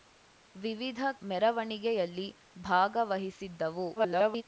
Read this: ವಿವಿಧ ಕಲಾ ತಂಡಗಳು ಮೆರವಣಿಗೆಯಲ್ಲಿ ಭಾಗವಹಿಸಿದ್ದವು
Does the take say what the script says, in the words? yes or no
no